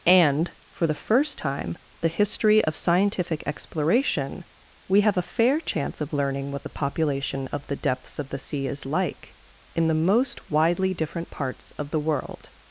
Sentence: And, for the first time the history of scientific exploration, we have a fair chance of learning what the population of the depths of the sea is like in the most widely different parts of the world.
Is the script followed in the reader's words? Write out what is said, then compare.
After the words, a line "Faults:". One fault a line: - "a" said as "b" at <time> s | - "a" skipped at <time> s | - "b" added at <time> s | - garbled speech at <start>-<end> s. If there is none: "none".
And, for the first time the history of scientific exploration, we have a fair chance of learning what the population of the depths of the sea is like in the most widely different parts of the world.
Faults:
none